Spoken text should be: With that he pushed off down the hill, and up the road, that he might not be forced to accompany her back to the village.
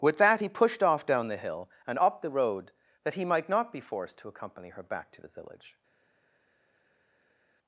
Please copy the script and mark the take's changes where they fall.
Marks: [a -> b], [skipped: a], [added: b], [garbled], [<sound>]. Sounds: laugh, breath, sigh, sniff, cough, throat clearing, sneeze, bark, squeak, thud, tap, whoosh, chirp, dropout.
With that he pushed off down the hill, and up the road, that he might not be forced to accompany her back to the village.